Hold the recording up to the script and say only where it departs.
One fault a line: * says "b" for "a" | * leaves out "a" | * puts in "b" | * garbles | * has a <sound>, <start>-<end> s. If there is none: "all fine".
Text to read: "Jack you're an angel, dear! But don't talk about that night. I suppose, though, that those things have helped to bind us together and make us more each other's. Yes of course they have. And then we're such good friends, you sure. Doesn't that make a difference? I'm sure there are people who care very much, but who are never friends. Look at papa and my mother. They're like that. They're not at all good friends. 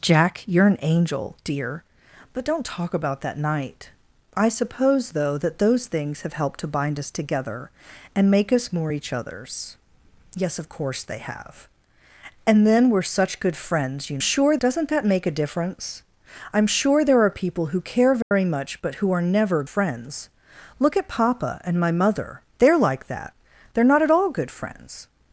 * has a dropout, 18.2-18.3 s